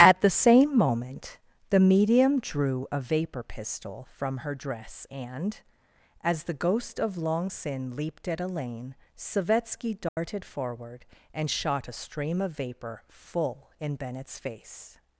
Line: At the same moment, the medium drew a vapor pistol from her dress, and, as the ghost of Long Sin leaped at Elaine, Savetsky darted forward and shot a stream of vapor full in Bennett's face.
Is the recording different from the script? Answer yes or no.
no